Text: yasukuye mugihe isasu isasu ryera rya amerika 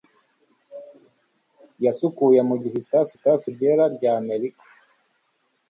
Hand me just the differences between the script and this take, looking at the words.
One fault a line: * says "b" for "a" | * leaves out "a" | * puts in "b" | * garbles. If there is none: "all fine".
all fine